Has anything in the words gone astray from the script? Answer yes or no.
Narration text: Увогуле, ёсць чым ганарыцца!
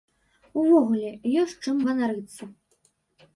no